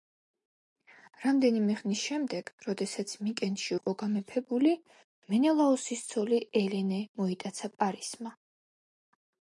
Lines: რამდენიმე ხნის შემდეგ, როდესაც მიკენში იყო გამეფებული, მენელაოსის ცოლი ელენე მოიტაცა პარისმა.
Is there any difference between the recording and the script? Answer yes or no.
no